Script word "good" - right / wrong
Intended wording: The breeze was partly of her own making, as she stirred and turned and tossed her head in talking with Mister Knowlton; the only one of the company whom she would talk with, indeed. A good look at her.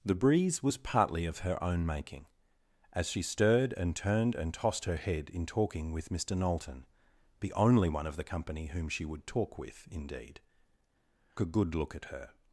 right